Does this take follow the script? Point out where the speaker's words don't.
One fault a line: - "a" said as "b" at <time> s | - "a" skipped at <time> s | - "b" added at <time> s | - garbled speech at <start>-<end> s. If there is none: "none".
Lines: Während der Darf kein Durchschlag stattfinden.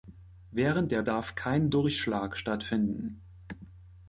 none